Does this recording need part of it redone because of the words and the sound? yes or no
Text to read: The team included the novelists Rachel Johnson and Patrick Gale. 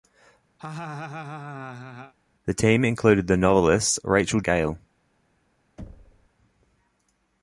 yes